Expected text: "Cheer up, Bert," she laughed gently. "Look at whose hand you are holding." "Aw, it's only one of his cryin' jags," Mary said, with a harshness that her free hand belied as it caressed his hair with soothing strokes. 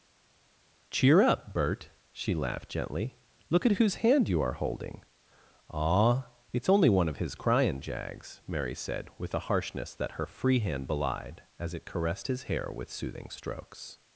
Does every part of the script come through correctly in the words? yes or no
yes